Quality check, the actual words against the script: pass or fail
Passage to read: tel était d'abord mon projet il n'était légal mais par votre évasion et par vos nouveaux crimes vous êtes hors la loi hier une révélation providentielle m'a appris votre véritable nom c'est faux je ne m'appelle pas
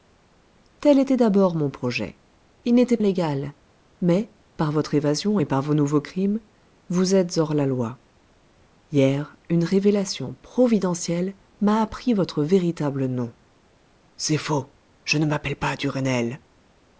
pass